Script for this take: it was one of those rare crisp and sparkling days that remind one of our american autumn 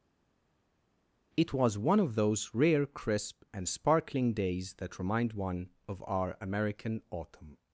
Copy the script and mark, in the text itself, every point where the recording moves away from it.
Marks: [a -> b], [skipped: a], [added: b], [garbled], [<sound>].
it was one of those rare crisp and sparkling days that remind one of our american autumn